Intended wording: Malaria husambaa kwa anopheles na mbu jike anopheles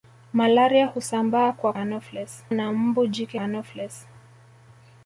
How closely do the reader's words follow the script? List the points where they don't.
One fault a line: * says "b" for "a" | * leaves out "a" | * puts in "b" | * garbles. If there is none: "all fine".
all fine